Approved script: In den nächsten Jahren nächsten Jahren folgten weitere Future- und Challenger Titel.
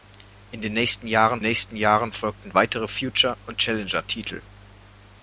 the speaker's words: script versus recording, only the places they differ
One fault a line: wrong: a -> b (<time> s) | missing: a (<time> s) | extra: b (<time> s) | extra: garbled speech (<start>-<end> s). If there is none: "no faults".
no faults